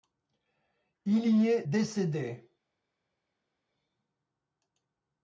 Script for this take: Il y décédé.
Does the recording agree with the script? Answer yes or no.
no